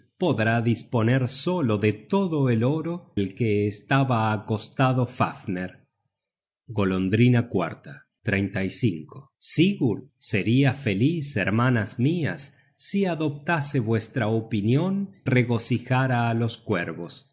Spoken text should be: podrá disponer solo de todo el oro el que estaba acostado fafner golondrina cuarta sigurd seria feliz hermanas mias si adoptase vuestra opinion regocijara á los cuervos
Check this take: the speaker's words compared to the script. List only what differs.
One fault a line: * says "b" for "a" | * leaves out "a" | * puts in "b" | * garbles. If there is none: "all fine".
all fine